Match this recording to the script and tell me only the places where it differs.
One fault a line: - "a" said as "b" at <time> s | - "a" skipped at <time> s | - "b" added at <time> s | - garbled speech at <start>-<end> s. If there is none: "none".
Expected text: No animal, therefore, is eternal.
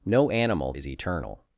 - "therefore" skipped at 0.7 s